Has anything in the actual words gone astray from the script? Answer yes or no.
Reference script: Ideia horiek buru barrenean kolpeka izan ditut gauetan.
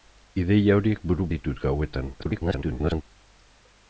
yes